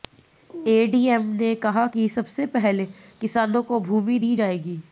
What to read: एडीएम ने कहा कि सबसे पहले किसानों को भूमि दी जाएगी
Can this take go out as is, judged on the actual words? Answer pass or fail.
pass